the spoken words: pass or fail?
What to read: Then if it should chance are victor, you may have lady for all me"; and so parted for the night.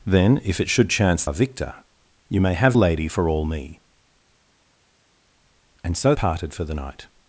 pass